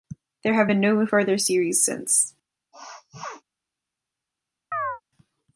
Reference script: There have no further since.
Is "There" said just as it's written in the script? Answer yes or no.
yes